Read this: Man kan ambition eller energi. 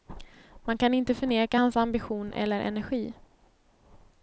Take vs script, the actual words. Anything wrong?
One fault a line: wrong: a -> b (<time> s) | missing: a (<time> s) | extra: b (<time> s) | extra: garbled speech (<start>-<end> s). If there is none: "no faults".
extra: inte förneka hans (0.9 s)